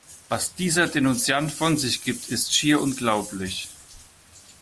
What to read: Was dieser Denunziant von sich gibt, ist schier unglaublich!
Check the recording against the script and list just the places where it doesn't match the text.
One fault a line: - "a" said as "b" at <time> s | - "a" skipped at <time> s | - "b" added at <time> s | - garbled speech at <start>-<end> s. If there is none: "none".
none